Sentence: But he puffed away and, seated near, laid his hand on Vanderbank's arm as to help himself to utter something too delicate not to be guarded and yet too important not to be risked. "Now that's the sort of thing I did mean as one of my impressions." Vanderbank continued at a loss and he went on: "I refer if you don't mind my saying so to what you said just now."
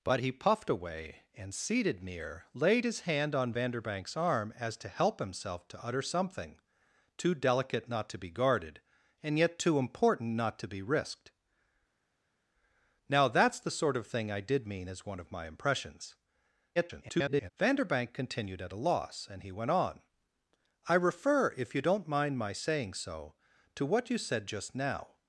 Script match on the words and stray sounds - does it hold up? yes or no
no